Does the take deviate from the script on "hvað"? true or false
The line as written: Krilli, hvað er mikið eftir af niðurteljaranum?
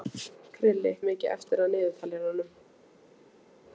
true